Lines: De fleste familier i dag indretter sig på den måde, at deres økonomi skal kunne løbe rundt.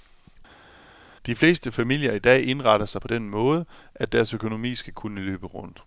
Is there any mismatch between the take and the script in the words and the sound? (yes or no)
no